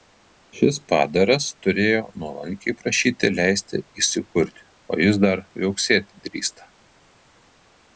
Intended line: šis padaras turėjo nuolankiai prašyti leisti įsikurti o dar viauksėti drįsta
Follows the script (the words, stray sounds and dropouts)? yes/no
no